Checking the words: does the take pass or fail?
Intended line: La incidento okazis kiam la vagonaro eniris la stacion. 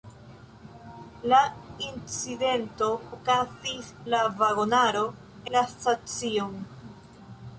fail